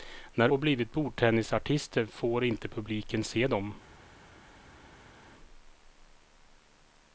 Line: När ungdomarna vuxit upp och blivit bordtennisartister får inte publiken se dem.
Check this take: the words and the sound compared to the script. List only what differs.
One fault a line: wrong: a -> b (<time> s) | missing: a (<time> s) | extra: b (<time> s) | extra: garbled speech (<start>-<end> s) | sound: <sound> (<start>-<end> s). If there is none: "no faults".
missing: ungdomarna vuxit upp (0.5 s)